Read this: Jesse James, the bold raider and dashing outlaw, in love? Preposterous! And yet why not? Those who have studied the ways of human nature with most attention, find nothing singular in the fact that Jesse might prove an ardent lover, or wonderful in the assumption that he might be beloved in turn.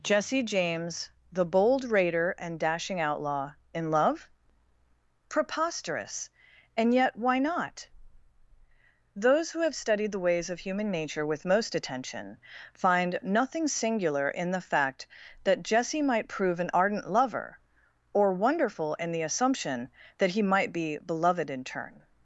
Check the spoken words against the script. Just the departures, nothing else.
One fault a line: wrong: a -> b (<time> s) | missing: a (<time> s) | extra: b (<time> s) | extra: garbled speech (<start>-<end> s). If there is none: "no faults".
no faults